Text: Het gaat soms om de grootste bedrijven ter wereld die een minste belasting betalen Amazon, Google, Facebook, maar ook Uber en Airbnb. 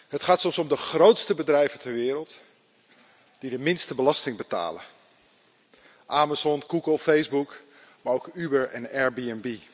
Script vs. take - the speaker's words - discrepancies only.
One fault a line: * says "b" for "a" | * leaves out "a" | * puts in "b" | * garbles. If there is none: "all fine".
* says "de" for "een"